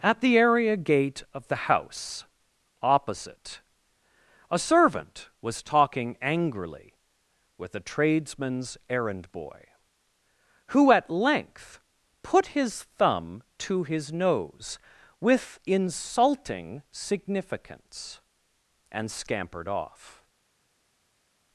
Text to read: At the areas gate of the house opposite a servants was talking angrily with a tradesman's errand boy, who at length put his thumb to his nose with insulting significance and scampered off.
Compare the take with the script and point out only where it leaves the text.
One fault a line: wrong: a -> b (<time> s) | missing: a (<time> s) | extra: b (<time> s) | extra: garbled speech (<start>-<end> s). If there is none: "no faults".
wrong: areas -> area (0.3 s)
wrong: servants -> servant (4.6 s)